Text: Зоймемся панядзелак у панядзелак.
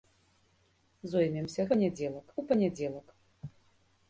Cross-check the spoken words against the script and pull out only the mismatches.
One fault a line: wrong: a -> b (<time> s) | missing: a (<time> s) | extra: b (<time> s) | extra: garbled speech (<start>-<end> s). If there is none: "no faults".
no faults